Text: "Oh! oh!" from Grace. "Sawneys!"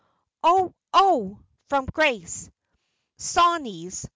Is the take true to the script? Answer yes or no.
yes